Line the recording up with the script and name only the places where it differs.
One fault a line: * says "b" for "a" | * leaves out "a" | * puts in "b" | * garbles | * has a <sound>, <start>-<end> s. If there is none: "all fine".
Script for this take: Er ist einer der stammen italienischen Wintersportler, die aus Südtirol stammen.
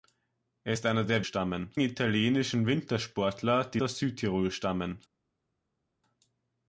all fine